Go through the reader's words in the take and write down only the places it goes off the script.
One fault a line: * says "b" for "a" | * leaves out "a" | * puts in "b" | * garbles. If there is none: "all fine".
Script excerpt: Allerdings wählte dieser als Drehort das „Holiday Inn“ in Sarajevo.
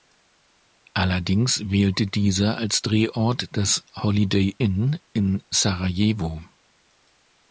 all fine